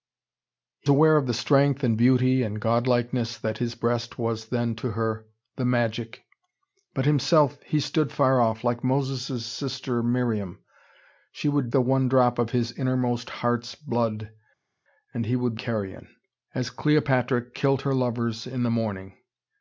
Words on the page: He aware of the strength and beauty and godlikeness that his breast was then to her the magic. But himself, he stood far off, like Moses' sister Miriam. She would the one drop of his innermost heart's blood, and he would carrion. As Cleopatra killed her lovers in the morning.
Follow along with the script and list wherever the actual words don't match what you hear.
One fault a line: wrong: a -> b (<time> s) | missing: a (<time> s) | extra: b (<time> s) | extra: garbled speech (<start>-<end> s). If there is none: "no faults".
no faults